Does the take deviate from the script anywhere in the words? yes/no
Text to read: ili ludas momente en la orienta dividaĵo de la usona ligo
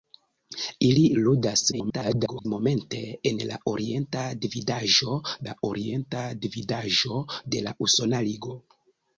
yes